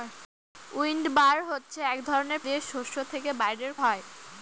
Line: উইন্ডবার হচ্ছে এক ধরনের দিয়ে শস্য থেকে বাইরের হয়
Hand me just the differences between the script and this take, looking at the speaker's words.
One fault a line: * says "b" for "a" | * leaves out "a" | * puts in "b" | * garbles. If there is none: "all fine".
all fine